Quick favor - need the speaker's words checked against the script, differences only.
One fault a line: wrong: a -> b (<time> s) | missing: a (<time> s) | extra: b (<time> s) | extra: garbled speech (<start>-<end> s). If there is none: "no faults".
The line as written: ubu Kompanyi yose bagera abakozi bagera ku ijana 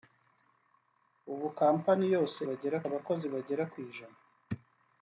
no faults